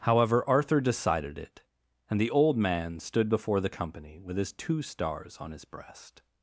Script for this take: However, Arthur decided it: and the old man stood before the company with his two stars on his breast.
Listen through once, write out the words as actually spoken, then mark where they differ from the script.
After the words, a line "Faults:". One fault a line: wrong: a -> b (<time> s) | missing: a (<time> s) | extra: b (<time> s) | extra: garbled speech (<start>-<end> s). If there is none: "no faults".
However, Arthur decided it: and the old man stood before the company with his two stars on his breast.
Faults:
no faults